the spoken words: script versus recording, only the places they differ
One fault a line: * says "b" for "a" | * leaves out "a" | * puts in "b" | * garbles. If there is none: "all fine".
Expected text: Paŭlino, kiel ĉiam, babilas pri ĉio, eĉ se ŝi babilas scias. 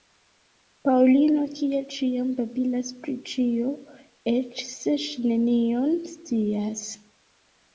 * says "nenion" for "babilas"